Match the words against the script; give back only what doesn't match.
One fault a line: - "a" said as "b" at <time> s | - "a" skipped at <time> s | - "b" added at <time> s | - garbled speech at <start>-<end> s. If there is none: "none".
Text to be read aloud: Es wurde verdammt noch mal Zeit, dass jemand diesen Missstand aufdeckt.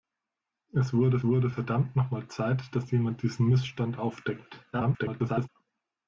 - "wurde" added at 1.3 s
- garbled speech at 4.7-5.5 s